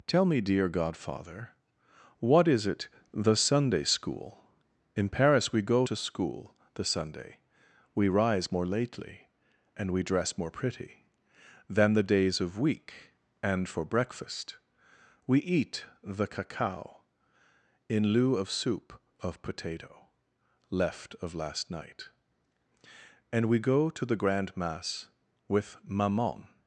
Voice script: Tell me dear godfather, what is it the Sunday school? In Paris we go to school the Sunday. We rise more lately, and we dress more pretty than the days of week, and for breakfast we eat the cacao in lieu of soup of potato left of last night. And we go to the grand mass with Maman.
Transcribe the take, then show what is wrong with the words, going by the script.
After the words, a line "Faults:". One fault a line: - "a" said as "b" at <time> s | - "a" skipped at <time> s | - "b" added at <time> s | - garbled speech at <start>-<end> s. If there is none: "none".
Tell me dear godfather, what is it the Sunday school? In Paris we go to school the Sunday. We rise more lately, and we dress more pretty than the days of week, and for breakfast we eat the cacao in lieu of soup of potato left of last night. And we go to the grand mass with Maman.
Faults:
none